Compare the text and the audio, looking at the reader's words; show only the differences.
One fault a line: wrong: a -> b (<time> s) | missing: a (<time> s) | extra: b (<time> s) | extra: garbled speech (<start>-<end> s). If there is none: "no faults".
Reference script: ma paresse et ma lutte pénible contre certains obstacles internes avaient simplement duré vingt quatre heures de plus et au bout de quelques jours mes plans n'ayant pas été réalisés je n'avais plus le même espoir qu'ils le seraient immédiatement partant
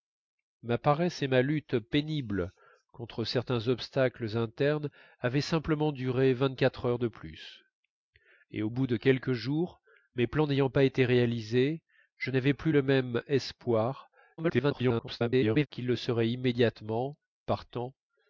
extra: garbled speech (14.4-15.7 s)